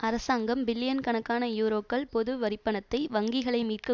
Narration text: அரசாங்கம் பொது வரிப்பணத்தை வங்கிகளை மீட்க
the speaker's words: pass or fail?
fail